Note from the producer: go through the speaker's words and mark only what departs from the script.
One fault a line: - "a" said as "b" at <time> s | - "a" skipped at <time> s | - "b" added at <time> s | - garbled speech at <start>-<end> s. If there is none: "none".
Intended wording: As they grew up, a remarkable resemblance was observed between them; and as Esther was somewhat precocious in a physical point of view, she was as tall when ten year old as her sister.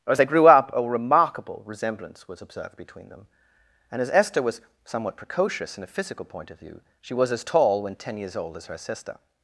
- "year" said as "years" at 8.2 s